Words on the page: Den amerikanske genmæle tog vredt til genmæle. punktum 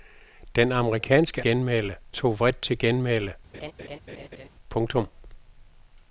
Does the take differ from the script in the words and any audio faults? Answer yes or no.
yes